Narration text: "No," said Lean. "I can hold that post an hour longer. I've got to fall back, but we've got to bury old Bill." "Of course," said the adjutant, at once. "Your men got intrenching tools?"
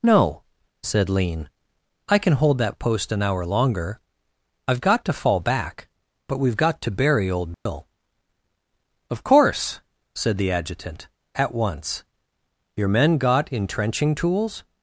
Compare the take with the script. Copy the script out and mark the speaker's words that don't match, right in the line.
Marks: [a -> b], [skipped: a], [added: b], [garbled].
"No," said Lean. "I can hold that post an hour longer. I've got to fall back, but we've got to bury old Bill." "Of course," said the adjutant, at once. "Your men got intrenching tools?"